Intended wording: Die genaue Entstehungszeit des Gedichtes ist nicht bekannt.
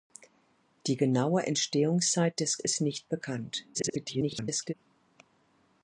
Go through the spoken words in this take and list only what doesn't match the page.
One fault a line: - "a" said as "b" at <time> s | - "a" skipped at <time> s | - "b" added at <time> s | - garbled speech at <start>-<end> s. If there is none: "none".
- "Gedichtes" skipped at 2.6 s
- garbled speech at 3.7-4.7 s